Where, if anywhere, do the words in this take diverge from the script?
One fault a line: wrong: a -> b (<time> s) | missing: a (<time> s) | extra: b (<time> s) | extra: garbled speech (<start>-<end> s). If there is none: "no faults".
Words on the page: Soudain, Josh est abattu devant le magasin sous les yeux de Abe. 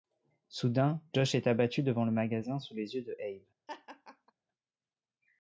no faults